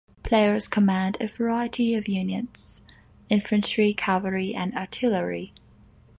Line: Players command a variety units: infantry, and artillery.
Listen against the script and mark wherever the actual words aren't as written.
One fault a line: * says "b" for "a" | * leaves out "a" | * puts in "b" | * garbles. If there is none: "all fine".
* puts in "of"
* puts in "cavalry"